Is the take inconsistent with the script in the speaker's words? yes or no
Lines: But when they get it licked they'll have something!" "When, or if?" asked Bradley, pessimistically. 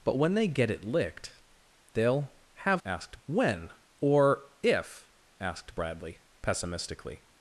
yes